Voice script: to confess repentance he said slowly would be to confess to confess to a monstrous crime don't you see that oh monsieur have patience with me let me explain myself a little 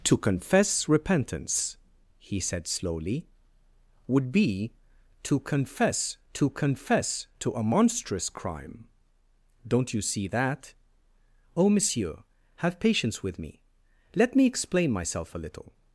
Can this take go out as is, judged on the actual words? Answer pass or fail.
pass